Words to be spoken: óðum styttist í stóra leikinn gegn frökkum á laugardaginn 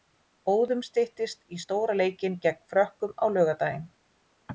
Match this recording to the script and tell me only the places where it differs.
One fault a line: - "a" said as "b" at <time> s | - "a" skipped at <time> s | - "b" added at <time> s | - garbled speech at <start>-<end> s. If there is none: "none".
none